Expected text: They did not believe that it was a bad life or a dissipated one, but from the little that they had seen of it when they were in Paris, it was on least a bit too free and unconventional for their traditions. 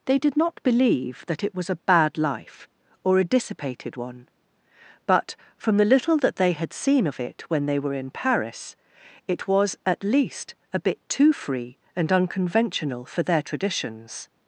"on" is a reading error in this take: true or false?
true